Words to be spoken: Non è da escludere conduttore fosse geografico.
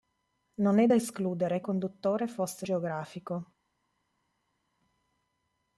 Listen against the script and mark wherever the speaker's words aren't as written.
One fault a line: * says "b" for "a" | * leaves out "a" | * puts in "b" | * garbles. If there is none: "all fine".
all fine